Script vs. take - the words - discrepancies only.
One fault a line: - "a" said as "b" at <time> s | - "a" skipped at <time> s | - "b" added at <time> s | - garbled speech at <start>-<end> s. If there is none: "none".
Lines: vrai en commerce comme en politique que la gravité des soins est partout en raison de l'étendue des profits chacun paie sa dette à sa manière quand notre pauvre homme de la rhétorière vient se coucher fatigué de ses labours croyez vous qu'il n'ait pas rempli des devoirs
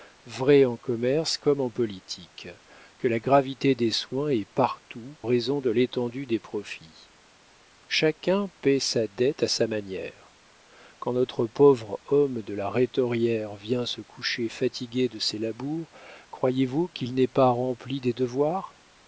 - "en" skipped at 5.2 s